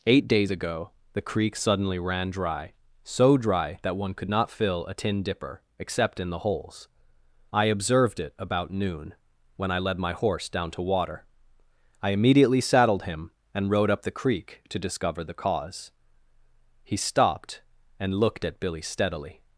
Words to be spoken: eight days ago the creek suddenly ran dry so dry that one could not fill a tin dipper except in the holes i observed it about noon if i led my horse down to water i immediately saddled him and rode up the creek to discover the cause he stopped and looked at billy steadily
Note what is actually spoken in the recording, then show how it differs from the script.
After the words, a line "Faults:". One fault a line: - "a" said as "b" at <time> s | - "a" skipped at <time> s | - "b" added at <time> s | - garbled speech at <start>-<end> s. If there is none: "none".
eight days ago the creek suddenly ran dry so dry that one could not fill a tin dipper except in the holes i observed it about noon when i led my horse down to water i immediately saddled him and rode up the creek to discover the cause he stopped and looked at billy steadily
Faults:
- "if" said as "when" at 9.6 s